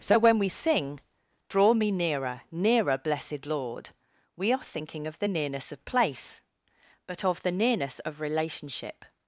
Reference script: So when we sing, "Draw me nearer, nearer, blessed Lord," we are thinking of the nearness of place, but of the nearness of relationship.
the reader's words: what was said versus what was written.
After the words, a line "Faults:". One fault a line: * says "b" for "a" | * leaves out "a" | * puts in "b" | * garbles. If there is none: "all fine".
So when we sing, "Draw me nearer, nearer, blessed Lord," we are thinking of the nearness of place, but of the nearness of relationship.
Faults:
all fine